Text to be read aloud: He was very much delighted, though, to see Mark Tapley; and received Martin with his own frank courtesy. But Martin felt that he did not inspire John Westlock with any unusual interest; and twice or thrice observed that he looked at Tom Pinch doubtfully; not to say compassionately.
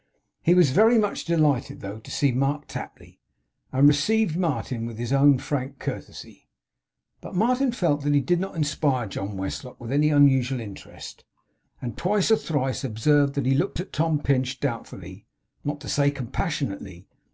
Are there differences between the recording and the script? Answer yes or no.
no